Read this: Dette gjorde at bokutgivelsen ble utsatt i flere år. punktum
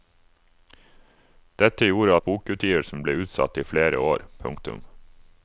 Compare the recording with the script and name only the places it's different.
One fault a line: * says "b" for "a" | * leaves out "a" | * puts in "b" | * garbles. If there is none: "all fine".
all fine